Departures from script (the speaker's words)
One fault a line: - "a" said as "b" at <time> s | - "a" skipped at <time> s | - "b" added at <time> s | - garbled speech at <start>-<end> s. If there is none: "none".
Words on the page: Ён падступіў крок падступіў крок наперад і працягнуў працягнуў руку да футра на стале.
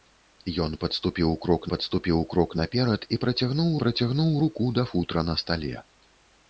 none